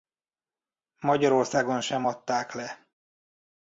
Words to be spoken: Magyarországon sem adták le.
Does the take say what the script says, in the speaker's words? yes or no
yes